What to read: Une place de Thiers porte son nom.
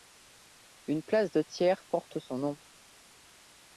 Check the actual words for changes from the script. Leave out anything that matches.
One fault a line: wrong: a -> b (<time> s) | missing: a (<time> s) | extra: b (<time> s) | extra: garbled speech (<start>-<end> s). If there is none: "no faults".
no faults